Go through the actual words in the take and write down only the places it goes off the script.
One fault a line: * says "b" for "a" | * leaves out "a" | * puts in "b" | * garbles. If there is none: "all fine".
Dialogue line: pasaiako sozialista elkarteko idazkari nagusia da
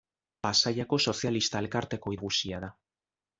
* leaves out "idazkari"